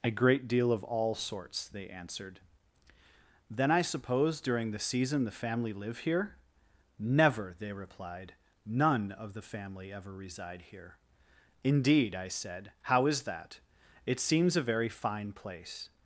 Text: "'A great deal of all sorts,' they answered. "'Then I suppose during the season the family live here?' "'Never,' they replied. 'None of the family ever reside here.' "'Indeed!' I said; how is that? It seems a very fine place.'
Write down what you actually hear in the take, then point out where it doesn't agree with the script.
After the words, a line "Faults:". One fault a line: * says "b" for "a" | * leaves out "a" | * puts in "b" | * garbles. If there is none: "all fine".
"'A great deal of all sorts,' they answered. "'Then I suppose during the season the family live here?' "'Never,' they replied. 'None of the family ever reside here.' "'Indeed!' I said; how is that? It seems a very fine place.'
Faults:
all fine